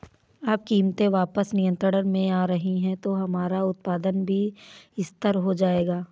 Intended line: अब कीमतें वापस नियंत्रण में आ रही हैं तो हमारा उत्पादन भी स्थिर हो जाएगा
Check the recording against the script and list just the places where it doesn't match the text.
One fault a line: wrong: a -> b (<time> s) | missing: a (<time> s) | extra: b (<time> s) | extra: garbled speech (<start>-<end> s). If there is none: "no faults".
no faults